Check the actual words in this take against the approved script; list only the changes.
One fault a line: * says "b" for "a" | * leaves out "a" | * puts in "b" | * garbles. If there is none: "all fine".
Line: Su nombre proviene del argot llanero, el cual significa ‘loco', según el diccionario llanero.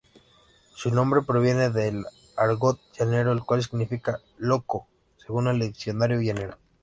all fine